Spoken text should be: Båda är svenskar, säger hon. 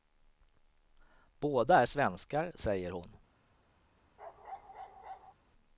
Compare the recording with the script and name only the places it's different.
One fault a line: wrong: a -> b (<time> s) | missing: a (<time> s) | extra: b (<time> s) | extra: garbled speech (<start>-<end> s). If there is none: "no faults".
no faults